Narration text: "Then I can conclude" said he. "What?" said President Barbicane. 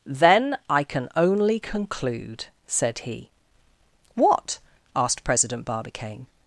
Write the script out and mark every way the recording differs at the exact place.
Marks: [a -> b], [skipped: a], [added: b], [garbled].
"Then I can [added: only] conclude" said he. "What?" [said -> asked] President Barbicane.